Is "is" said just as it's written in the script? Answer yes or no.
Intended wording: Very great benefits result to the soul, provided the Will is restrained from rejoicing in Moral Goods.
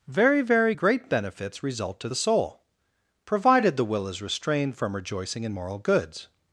yes